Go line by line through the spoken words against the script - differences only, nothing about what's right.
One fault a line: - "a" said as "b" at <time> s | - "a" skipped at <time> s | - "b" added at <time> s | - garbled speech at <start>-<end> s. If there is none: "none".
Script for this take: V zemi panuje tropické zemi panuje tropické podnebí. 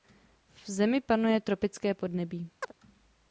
- "zemi panuje tropické" skipped at 1.9 s